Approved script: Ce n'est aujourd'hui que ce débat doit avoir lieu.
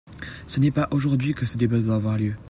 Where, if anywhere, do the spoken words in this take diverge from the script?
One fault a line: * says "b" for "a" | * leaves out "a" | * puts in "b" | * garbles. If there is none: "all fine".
* puts in "pas"